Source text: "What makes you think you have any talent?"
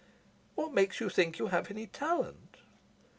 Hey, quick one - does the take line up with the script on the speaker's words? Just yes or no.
yes